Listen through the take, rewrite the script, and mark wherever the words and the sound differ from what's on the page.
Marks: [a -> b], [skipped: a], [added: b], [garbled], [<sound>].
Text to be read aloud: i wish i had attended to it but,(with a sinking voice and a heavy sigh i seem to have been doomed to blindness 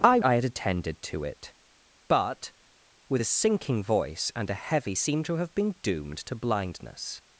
i [skipped: wish] i had attended to it but,(with a sinking voice and a heavy [skipped: sigh i] seem to have been doomed to blindness